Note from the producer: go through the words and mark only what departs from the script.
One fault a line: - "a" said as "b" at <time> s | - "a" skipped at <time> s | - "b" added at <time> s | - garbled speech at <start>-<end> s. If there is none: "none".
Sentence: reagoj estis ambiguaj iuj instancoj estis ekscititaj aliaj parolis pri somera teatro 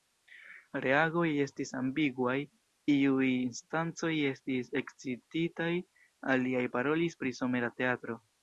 none